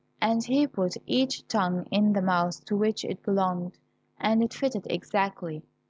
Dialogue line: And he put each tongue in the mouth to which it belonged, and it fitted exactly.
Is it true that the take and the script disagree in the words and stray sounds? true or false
false